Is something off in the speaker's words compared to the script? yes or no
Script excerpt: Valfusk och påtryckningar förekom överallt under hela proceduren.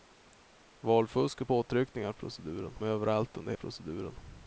yes